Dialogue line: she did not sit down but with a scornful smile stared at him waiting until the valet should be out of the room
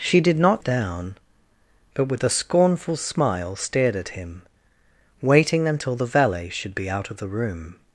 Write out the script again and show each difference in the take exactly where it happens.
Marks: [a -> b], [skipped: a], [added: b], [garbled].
she did not [skipped: sit] down but with a scornful smile stared at him waiting until the valet should be out of the room